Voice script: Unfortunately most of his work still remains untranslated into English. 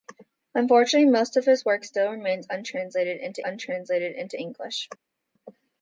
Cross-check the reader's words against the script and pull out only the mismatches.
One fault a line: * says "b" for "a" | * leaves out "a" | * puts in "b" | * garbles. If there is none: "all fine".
* puts in "untranslated into"